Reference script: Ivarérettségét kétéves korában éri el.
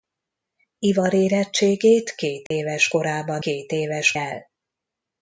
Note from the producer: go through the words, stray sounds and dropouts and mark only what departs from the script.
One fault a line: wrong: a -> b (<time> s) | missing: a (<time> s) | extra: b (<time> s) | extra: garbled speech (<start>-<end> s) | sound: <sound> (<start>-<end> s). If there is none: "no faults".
sound: dropout (2.5-2.5 s)
wrong: éri -> kétéves (3.4 s)